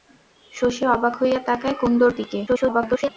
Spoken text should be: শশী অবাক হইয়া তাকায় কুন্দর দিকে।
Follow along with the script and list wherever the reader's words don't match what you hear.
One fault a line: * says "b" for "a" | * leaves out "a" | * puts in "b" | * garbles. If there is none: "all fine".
* garbles